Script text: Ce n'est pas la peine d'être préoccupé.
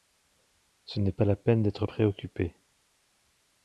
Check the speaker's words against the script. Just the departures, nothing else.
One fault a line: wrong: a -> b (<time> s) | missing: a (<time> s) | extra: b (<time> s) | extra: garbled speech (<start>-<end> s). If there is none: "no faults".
no faults